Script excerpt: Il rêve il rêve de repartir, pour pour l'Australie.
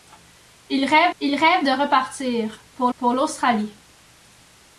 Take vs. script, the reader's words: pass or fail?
pass